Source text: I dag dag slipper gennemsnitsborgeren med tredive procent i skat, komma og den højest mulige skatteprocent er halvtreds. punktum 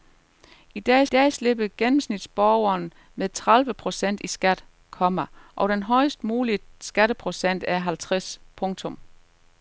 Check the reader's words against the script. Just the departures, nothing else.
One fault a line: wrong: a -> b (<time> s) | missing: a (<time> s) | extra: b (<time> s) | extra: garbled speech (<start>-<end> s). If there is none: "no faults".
no faults